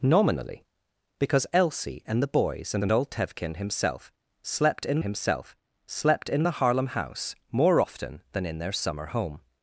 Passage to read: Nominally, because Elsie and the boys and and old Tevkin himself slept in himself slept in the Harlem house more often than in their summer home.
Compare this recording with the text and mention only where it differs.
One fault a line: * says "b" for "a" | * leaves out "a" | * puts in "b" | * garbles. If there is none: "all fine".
all fine